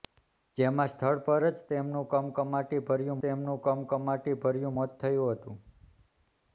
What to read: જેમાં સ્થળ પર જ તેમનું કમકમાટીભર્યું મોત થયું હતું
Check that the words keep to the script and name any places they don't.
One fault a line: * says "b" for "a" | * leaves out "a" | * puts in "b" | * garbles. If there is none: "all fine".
* puts in "તેમનું કમકમાટીભર્યું"